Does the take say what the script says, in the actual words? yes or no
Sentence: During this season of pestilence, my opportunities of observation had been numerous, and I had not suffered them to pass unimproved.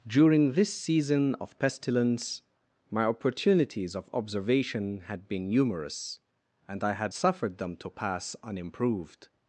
no